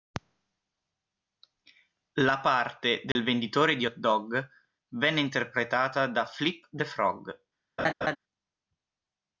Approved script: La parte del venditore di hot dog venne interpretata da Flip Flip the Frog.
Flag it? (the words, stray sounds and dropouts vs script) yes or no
yes